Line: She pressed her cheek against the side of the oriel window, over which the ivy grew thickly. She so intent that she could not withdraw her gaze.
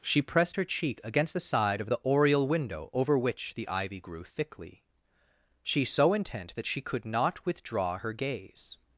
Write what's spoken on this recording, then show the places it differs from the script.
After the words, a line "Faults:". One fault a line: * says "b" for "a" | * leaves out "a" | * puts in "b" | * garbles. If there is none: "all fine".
She pressed her cheek against the side of the oriel window, over which the ivy grew thickly. She so intent that she could not withdraw her gaze.
Faults:
all fine